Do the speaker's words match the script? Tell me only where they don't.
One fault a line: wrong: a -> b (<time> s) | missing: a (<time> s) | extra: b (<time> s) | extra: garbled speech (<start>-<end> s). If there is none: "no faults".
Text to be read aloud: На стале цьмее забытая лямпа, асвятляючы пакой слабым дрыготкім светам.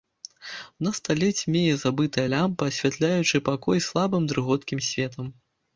no faults